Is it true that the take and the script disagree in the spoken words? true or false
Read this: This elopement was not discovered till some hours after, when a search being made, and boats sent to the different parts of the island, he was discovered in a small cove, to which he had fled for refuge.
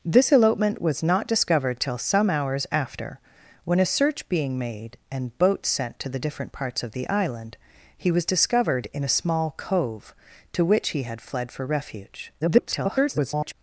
true